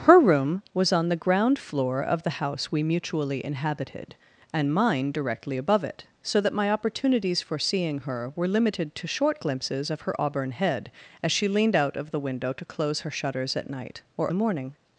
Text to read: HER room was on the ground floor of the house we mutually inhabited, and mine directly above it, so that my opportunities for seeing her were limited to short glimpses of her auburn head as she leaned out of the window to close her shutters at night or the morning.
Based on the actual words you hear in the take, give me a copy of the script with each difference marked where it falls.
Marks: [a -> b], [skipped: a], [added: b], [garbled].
HER room was on the ground floor of the house we mutually inhabited, and mine directly above it, so that my opportunities for seeing her were limited to short glimpses of her auburn head as she leaned out of the window to close her shutters at night or the morning.